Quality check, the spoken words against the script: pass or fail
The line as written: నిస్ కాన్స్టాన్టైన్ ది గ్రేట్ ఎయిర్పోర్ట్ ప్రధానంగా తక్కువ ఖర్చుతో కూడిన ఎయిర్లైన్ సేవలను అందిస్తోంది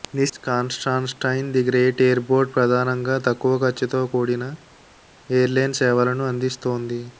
pass